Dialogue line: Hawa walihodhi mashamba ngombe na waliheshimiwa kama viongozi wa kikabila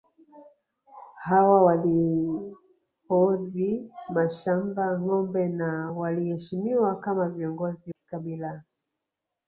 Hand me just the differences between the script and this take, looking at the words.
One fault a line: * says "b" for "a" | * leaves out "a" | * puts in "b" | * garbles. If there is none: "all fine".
* leaves out "wa"